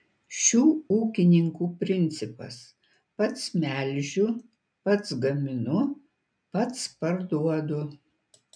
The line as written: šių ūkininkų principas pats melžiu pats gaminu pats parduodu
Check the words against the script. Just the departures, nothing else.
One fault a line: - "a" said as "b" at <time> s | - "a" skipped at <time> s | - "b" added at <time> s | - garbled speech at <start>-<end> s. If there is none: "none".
none